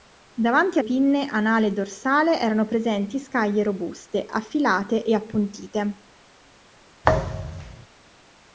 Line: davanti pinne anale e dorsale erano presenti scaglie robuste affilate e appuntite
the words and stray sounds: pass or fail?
fail